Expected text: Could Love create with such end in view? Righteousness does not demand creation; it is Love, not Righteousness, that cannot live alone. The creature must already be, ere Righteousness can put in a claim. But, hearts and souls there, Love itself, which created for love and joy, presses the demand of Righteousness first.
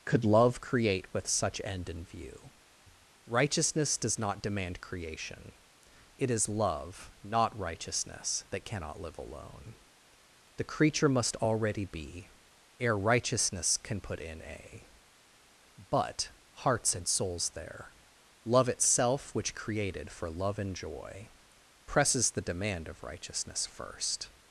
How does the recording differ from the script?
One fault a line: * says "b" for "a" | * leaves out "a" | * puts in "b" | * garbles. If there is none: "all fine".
* leaves out "claim"